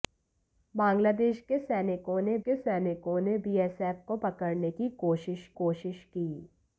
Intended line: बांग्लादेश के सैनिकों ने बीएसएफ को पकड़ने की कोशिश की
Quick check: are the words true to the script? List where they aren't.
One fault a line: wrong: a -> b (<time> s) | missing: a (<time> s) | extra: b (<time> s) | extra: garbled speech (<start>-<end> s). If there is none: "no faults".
extra: के सैनिकों ने (2.5 s)
extra: कोशिश (5.6 s)